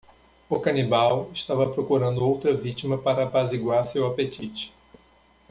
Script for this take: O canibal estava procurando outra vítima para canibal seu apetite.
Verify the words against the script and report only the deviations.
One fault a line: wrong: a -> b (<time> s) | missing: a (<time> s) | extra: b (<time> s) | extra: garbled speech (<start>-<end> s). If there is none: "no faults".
wrong: canibal -> apaziguar (3.2 s)